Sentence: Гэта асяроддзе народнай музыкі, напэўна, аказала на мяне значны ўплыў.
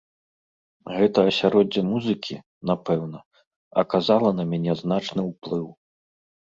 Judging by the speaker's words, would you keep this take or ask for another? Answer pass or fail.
fail